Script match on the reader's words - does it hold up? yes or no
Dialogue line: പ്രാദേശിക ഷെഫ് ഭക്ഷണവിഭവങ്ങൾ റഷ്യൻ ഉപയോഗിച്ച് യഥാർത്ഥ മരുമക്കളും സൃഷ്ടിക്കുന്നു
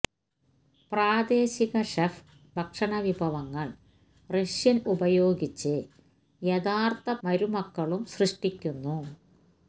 yes